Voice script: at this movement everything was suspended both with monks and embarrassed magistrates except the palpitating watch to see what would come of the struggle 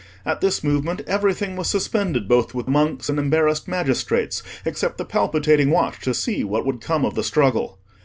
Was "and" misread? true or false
false